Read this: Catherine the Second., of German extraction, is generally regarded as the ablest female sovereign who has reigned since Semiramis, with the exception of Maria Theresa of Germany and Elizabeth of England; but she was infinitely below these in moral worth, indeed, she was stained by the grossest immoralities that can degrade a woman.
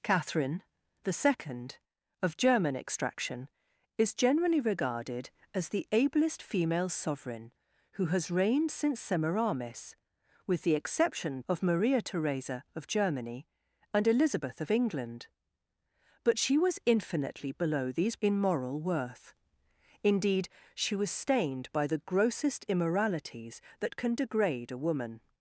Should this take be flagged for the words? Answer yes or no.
no